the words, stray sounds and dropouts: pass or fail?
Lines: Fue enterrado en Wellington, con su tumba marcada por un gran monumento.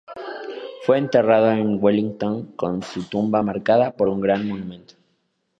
pass